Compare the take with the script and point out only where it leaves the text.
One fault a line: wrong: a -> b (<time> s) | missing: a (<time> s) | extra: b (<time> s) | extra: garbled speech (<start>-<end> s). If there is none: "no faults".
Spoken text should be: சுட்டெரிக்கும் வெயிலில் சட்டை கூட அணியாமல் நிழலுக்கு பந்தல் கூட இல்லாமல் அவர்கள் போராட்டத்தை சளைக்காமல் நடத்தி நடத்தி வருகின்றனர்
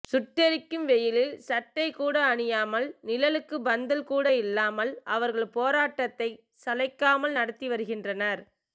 missing: நடத்தி (7.7 s)